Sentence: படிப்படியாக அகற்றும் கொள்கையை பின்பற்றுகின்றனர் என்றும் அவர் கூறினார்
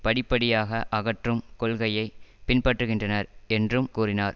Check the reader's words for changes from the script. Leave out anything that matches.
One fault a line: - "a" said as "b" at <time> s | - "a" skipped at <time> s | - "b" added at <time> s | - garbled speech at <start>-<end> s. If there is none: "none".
- "அவர்" skipped at 3.9 s